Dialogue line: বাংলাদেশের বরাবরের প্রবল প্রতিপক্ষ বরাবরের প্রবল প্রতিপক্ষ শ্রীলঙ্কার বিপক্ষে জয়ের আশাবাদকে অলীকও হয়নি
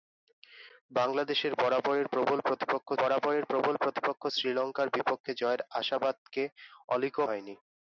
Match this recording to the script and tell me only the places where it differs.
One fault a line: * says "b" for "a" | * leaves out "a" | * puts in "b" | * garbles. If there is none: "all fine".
all fine